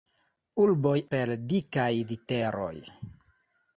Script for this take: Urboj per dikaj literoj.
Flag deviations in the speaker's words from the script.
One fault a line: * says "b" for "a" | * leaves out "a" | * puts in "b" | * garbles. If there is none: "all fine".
all fine